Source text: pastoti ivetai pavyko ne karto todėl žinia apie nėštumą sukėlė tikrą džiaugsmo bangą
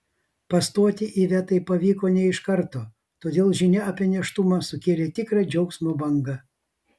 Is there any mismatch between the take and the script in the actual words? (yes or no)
yes